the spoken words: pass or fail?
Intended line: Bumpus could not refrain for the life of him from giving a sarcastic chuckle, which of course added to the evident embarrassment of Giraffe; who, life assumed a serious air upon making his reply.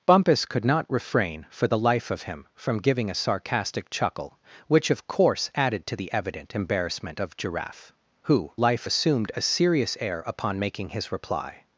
pass